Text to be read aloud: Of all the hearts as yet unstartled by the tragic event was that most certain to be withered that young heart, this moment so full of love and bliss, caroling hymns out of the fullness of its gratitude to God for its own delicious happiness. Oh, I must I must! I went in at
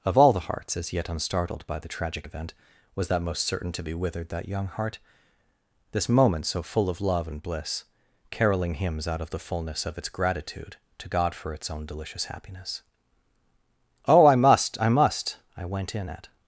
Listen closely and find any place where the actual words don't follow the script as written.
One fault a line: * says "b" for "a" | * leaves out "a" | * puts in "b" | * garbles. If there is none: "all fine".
all fine